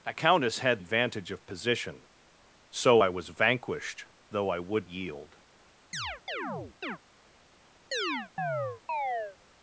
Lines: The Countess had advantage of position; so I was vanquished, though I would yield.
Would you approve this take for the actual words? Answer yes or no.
yes